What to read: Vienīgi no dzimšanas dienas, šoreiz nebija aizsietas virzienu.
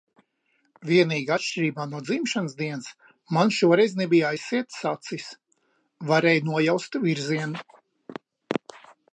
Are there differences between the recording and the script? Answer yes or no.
yes